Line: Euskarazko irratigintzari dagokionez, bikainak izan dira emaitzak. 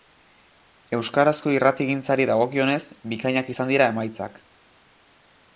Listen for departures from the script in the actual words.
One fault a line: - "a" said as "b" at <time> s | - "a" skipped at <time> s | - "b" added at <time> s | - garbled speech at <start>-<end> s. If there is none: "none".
none